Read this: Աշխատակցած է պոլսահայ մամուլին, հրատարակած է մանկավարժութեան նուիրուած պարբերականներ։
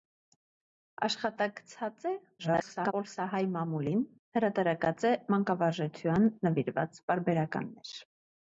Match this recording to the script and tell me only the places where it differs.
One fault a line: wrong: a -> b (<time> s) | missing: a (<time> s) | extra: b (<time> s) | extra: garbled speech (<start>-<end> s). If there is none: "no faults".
extra: garbled speech (2.4-2.9 s)